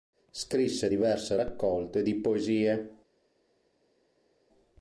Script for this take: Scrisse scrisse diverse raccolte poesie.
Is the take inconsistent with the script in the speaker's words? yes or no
yes